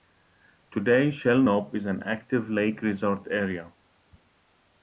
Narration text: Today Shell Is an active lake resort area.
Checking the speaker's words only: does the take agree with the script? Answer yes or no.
no